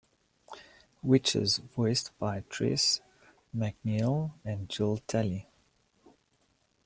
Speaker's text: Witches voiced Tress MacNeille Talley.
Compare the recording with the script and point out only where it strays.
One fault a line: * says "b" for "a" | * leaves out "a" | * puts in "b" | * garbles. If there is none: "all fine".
* puts in "by"
* puts in "and Jill"